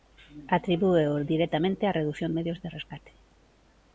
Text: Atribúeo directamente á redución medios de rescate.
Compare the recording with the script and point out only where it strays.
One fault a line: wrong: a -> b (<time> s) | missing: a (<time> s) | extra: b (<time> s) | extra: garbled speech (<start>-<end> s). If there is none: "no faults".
no faults